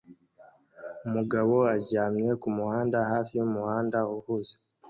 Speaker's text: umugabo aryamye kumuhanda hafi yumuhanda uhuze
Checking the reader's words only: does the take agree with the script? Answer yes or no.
yes